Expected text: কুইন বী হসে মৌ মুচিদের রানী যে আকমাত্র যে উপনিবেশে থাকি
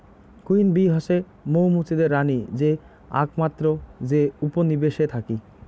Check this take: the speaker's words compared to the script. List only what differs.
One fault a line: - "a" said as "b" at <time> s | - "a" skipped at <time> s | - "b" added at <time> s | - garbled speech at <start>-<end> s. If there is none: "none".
none